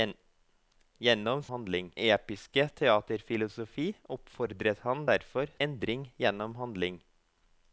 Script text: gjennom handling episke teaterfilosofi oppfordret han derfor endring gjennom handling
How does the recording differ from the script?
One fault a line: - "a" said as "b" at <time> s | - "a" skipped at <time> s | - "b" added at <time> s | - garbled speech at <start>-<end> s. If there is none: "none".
none